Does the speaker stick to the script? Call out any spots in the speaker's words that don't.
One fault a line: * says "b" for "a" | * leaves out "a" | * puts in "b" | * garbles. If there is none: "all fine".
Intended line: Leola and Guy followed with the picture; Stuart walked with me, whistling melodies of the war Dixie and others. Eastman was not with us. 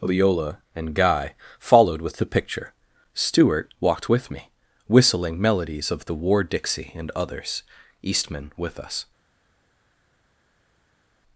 * leaves out "was not"